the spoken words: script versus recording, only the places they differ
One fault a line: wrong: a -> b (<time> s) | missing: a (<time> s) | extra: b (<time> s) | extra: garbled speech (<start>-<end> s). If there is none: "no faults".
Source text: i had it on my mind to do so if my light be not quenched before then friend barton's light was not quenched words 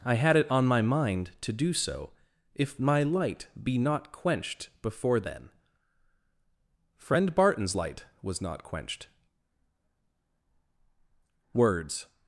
no faults